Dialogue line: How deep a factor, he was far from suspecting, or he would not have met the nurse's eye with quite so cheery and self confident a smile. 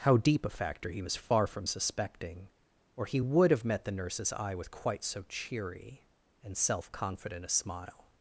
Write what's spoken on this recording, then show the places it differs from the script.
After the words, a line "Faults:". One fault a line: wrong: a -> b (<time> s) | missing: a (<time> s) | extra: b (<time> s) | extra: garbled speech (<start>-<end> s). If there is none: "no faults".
How deep a factor, he was far from suspecting, or he would have met the nurse's eye with quite so cheery and self confident a smile.
Faults:
missing: not (3.5 s)